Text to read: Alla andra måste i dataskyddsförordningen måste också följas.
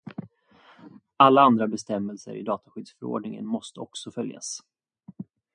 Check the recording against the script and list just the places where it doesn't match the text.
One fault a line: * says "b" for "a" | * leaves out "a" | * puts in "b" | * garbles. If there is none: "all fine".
* says "bestämmelser" for "måste"